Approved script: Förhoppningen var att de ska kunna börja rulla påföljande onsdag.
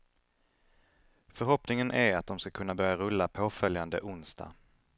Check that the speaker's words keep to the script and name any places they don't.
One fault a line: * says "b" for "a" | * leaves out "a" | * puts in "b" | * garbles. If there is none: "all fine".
* says "är" for "var"